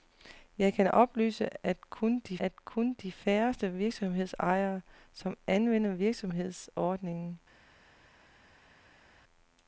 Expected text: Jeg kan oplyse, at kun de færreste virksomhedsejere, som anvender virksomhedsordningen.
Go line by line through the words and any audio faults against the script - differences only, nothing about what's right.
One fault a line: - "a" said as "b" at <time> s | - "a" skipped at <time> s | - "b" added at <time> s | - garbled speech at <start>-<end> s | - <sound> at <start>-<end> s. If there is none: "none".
- "at kun de" added at 2.4 s